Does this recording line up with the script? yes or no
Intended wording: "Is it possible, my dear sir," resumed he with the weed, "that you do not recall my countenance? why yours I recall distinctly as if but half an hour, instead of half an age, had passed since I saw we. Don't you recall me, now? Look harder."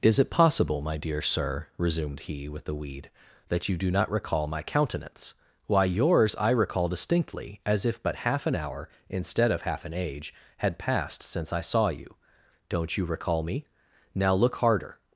no